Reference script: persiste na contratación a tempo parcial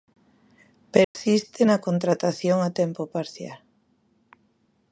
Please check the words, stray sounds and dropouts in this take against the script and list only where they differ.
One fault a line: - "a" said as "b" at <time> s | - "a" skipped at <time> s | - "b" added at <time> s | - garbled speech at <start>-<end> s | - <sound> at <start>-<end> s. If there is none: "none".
- dropout at 1.0-1.1 s